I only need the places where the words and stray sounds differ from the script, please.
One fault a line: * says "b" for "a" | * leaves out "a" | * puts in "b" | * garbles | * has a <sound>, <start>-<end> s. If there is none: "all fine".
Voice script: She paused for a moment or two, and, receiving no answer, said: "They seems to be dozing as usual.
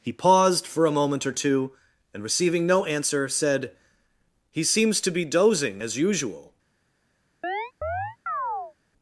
* says "He" for "She"
* says "He" for "They"
* has a chirp, 7.4-8.7 s